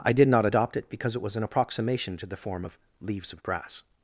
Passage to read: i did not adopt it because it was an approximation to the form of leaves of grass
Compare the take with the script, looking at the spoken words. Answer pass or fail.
pass